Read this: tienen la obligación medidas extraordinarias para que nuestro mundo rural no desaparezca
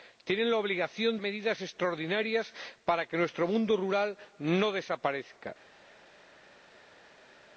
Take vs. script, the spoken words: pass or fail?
pass